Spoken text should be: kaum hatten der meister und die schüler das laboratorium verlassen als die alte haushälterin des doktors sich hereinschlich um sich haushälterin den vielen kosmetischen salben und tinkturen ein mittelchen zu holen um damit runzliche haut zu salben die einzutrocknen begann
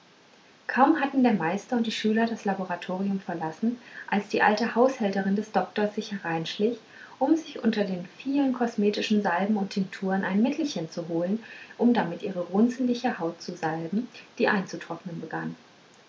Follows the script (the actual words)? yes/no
no